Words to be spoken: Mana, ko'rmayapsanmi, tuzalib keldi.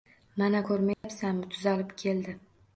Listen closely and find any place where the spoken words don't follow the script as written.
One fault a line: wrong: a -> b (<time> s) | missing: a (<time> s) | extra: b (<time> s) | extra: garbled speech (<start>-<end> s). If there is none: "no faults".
no faults